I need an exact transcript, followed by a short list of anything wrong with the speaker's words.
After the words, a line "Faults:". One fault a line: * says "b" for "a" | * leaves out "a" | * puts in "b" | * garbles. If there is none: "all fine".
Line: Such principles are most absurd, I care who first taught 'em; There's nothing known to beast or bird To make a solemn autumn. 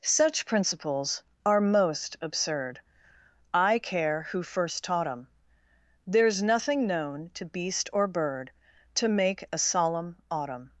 Such principles are most absurd, I care who first taught 'em; There's nothing known to beast or bird To make a solemn autumn.
Faults:
all fine